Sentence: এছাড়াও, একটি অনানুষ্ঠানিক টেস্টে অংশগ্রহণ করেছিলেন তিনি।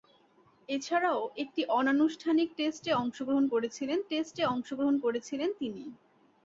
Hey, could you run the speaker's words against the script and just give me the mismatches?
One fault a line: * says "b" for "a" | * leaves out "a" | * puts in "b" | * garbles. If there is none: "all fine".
* puts in "টেস্টে অংশগ্রহণ করেছিলেন"